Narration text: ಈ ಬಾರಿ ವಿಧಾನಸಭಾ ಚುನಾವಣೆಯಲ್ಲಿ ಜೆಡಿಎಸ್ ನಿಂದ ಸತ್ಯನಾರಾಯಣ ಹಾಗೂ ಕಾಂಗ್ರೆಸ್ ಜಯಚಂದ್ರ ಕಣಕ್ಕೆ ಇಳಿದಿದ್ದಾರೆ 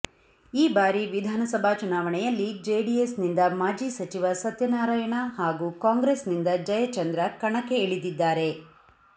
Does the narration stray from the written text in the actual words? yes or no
yes